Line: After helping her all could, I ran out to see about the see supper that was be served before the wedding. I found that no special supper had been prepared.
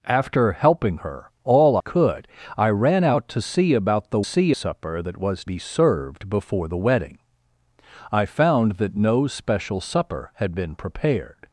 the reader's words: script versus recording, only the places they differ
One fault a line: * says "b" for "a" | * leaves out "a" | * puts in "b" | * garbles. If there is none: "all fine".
all fine